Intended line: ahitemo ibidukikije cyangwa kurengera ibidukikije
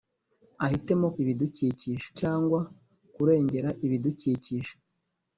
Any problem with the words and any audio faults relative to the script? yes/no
no